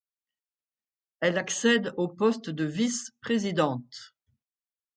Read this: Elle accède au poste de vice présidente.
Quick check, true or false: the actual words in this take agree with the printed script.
true